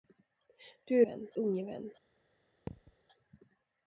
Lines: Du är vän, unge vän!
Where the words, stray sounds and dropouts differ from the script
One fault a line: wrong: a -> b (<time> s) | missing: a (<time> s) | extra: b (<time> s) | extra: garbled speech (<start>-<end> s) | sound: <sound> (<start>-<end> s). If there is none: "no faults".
sound: thud (2.7-3.0 s)